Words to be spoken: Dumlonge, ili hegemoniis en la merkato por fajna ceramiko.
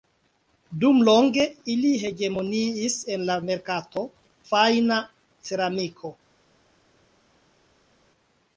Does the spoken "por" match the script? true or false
false